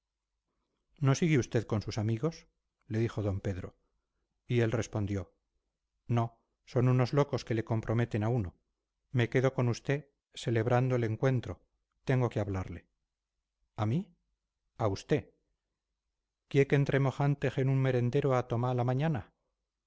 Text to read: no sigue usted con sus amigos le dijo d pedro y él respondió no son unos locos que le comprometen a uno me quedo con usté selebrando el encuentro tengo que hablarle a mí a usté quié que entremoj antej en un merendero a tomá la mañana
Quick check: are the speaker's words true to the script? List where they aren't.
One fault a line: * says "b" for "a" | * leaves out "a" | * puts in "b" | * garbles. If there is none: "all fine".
all fine